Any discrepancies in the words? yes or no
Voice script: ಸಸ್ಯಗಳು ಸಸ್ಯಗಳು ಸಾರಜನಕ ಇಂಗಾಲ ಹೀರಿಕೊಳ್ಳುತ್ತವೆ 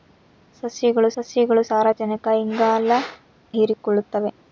no